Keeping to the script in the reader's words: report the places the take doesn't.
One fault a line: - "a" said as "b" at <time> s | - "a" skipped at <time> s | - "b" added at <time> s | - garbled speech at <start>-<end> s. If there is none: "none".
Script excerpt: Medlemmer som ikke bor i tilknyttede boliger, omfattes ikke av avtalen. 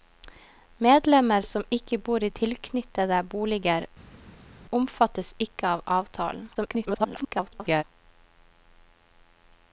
- garbled speech at 6.5-7.8 s